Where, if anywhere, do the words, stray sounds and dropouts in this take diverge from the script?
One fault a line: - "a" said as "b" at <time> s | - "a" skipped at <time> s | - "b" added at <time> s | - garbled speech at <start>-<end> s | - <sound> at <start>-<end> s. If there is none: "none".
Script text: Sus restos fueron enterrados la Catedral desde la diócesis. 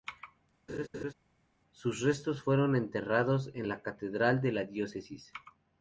- laugh at 0.7-1.1 s
- "en" added at 3.5 s
- "desde" said as "de" at 4.4 s